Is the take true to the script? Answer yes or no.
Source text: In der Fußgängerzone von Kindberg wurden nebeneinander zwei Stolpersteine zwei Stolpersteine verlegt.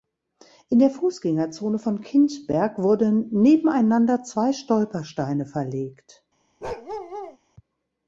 no